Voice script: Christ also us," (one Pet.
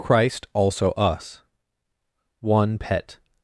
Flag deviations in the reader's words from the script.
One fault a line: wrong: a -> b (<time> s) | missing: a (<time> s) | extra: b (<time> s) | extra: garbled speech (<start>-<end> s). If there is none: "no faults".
no faults